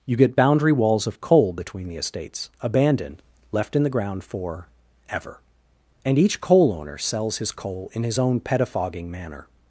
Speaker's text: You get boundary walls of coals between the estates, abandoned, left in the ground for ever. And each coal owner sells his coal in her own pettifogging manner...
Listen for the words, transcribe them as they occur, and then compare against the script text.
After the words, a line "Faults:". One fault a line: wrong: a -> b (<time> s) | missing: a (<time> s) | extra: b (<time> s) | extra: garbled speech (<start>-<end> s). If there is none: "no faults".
You get boundary walls of coal between the estates, abandoned, left in the ground for ever. And each coal owner sells his coal in his own pettifogging manner...
Faults:
wrong: coals -> coal (1.2 s)
wrong: her -> his (8.0 s)